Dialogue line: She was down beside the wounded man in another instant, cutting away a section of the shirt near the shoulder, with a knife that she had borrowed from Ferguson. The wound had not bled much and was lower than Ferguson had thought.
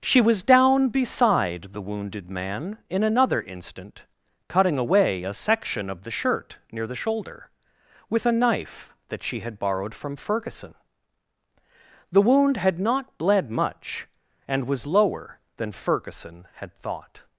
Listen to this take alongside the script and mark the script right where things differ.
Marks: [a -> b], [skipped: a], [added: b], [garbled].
She was down beside the wounded man in another instant, cutting away a section of the shirt near the shoulder, with a knife that she had borrowed from Ferguson. The wound had not bled much and was lower than Ferguson had thought.